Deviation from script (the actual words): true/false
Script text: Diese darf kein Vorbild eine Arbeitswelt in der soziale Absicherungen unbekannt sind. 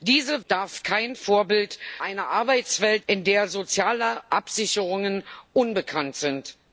false